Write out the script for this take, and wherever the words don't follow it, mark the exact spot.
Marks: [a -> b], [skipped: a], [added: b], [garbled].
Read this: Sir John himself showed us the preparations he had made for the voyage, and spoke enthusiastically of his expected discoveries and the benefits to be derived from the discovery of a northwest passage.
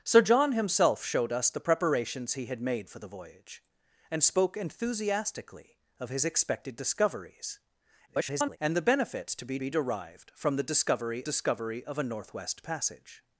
Sir John himself showed us the preparations he had made for the voyage, and spoke enthusiastically of his expected discoveries [garbled] and the benefits to be [added: be] derived from the discovery [added: discovery] of a northwest passage.